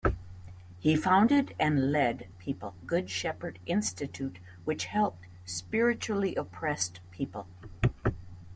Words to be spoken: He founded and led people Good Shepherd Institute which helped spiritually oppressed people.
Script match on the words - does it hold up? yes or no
yes